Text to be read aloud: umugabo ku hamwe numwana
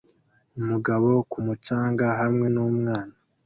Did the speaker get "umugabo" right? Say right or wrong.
right